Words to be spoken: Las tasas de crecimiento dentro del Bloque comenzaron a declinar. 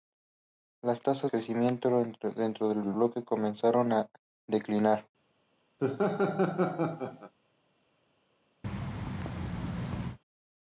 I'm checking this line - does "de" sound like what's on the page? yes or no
no